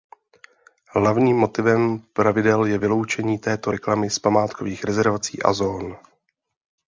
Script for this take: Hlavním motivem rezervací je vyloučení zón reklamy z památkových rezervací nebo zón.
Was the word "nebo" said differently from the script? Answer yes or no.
yes